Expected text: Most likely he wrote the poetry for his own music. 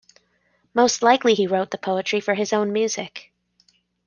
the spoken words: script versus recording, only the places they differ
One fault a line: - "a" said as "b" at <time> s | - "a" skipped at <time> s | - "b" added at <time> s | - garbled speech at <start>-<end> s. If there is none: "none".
none